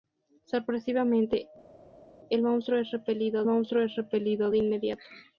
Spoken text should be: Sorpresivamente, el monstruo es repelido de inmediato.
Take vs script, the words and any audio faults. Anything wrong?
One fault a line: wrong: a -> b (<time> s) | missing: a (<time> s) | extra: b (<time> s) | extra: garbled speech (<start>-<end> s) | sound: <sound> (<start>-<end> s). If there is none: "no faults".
extra: monstruo es repelido (3.4 s)